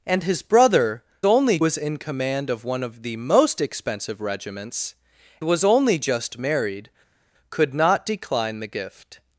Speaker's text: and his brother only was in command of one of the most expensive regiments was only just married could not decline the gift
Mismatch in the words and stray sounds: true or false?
false